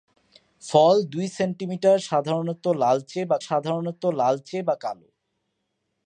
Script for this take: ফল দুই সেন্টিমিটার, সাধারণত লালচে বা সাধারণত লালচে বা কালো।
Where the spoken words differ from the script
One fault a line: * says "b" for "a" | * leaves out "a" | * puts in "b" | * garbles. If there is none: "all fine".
all fine